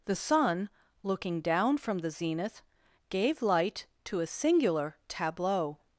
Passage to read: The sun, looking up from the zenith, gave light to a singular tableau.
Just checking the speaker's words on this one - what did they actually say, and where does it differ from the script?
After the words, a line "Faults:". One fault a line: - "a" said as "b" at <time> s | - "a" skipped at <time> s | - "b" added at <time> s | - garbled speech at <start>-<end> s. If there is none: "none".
The sun, looking down from the zenith, gave light to a singular tableau.
Faults:
- "up" said as "down" at 1.4 s